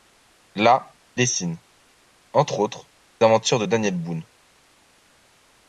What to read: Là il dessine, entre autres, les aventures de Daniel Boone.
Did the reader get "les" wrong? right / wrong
wrong